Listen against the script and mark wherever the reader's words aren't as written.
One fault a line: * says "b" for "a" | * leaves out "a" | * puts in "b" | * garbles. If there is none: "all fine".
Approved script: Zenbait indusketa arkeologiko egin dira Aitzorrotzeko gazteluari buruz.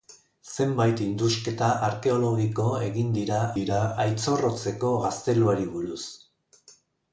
* puts in "dira"